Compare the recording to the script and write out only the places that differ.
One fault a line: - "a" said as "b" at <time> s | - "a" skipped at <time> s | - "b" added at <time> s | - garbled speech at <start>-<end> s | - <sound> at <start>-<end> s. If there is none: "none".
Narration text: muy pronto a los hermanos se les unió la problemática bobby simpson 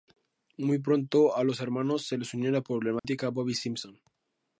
- dropout at 3.0-3.0 s